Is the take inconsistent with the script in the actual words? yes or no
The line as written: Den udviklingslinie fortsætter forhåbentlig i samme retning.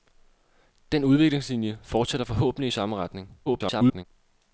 yes